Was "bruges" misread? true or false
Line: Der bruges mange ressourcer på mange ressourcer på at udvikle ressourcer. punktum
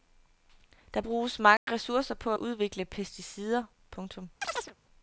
false